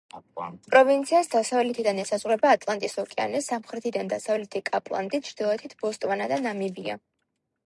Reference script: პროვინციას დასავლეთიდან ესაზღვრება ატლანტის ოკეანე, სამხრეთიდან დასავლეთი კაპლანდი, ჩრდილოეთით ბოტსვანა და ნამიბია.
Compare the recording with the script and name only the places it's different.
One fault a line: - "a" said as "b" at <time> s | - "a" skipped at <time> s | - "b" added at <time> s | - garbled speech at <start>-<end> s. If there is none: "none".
none